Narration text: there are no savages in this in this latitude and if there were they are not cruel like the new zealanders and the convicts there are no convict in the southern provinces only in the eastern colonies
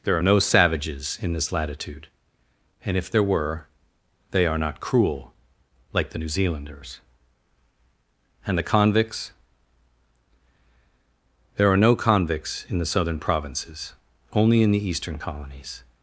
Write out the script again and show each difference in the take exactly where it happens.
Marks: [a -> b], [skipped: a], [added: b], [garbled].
there are no savages in this [skipped: in this] latitude and if there were they are not cruel like the new zealanders and the convicts there are no [convict -> convicts] in the southern provinces only in the eastern colonies